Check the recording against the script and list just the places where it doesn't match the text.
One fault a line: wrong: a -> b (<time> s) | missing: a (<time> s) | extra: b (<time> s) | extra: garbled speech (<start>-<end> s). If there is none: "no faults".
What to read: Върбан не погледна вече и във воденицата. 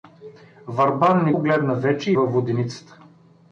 no faults